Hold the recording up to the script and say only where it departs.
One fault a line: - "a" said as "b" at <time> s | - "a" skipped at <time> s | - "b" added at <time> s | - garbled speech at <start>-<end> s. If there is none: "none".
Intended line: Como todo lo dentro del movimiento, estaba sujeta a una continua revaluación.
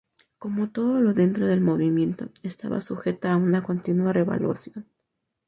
none